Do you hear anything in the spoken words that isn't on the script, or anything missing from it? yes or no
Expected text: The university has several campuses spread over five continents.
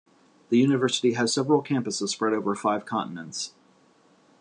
no